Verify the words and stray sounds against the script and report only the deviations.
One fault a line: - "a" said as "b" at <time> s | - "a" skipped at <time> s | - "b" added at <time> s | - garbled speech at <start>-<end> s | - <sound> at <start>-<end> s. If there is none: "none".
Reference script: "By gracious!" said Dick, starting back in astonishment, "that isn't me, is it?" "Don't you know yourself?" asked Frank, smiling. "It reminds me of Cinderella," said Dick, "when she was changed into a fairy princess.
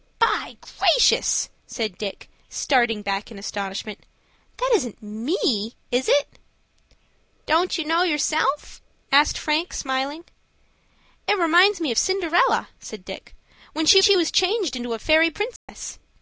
- "she" added at 14.0 s
- dropout at 15.6-15.7 s